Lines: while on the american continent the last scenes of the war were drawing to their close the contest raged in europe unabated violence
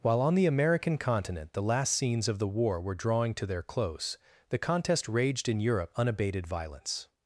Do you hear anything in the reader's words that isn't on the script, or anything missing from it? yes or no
no